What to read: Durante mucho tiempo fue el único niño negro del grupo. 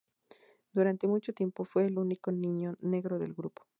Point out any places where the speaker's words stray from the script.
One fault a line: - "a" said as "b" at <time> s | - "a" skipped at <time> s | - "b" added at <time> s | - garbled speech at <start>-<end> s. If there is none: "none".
none